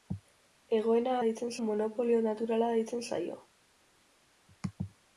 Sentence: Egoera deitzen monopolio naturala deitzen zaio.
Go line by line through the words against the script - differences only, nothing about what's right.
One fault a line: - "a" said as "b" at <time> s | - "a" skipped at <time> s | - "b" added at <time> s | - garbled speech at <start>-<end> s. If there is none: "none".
none